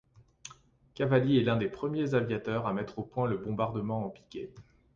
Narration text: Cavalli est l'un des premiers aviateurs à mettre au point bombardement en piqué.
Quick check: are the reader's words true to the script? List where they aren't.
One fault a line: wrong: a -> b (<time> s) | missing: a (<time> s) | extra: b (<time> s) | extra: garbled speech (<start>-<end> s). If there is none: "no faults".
extra: le (3.3 s)